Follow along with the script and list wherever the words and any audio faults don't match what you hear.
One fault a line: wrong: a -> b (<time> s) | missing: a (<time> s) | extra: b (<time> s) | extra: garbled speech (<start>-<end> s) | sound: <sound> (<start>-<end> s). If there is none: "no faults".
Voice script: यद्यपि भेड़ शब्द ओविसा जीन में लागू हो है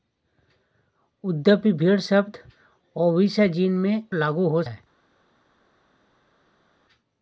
no faults